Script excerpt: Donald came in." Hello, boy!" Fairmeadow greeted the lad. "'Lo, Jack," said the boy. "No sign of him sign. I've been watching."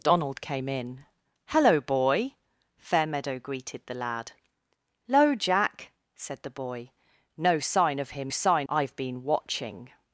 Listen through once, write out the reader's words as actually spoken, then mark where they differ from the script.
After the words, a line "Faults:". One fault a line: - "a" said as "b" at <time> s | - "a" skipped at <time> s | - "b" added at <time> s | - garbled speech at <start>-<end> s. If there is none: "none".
Donald came in." Hello, boy!" Fairmeadow greeted the lad. "'Lo, Jack," said the boy. "No sign of him sign. I've been watching."
Faults:
none